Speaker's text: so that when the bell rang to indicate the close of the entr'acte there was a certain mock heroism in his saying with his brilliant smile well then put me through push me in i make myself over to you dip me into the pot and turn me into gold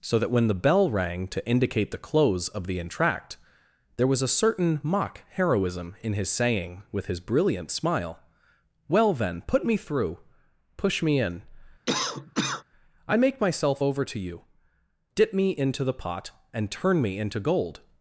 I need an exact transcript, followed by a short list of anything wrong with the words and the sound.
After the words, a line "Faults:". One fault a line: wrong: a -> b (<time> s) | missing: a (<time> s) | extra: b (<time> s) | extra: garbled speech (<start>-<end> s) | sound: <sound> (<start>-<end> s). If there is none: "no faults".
so that when the bell rang to indicate the close of the entr'acte there was a certain mock heroism in his saying with his brilliant smile well then put me through push me in i make myself over to you dip me into the pot and turn me into gold
Faults:
sound: cough (11.9-12.6 s)